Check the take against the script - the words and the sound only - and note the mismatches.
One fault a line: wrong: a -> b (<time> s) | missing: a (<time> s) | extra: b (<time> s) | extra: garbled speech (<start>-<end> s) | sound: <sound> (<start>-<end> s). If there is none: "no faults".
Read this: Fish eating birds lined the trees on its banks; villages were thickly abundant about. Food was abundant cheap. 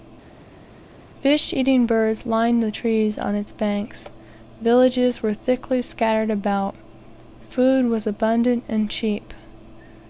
wrong: abundant -> scattered (5.8 s)
extra: and (8.7 s)